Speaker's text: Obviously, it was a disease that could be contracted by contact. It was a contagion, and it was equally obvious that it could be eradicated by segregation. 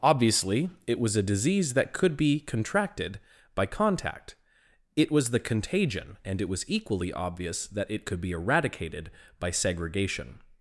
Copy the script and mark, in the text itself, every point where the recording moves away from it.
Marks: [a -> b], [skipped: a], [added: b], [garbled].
Obviously, it was a disease that could be contracted by contact. It was [a -> the] contagion, and it was equally obvious that it could be eradicated by segregation.